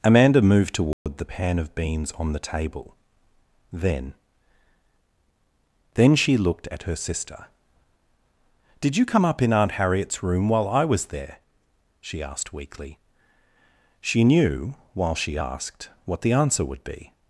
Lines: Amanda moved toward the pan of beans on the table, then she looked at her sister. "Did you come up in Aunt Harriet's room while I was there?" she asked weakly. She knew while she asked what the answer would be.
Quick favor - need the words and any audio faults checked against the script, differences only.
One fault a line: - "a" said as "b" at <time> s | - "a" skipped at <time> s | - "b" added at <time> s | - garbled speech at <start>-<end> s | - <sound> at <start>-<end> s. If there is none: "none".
- dropout at 0.9-1.1 s
- "then" added at 5.9 s